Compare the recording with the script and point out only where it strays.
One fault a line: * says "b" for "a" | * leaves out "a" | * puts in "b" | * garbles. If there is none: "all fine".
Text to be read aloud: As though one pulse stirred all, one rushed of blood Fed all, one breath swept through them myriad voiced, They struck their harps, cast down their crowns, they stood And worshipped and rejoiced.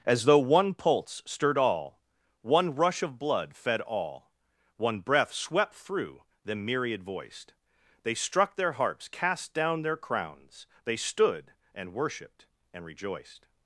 * says "rush" for "rushed"